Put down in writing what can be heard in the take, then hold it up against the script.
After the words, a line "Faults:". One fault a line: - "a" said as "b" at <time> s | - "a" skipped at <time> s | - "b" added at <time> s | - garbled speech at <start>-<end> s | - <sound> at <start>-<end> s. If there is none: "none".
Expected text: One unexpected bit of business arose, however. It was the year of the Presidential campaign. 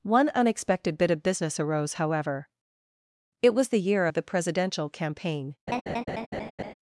One unexpected bit of business arose, however. It was the year of the Presidential campaign.
Faults:
- laugh at 5.7-6.7 s